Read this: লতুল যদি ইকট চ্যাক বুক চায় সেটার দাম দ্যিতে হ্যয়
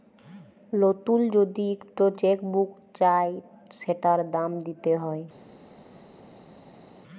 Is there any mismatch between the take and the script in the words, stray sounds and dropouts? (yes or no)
no